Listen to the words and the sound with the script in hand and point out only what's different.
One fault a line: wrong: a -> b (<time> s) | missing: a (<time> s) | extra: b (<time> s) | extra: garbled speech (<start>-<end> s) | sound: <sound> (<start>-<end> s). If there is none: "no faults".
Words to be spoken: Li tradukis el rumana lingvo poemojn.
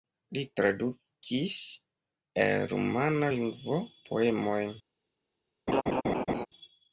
sound: laugh (5.7-6.5 s)